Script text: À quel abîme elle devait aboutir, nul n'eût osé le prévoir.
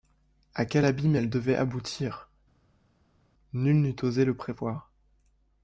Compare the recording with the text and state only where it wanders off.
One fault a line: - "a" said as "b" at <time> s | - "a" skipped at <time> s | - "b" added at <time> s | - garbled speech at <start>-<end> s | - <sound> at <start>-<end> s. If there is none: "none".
none